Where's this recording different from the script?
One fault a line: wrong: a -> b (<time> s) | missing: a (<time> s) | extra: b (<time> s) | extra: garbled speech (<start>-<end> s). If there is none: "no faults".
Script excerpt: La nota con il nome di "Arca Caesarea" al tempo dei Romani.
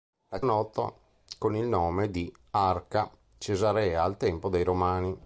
no faults